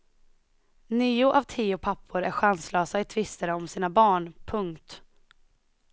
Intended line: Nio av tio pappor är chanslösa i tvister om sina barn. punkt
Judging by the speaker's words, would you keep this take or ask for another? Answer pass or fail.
pass